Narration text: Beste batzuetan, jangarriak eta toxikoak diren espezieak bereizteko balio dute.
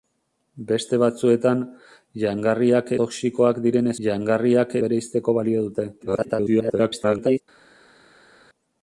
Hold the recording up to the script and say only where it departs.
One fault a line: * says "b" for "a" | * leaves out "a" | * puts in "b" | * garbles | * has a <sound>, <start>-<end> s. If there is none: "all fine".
* leaves out "eta"
* says "jangarriak" for "espezieak"
* garbles